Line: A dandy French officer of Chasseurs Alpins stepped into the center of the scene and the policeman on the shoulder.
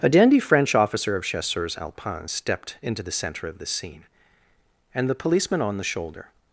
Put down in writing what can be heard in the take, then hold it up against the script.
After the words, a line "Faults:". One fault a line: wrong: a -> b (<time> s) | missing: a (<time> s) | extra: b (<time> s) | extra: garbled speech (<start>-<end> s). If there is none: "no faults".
A dandy French officer of Chasseurs Alpins stepped into the center of the scene and the policeman on the shoulder.
Faults:
no faults